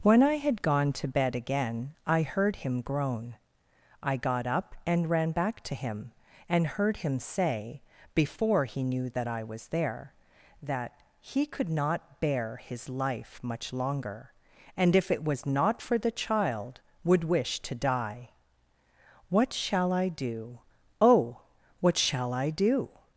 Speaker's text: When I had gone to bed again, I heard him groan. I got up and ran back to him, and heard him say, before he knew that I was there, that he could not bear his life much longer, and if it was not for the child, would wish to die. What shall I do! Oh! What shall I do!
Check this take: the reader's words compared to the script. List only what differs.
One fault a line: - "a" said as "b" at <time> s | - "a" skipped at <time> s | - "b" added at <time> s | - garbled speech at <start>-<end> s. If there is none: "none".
none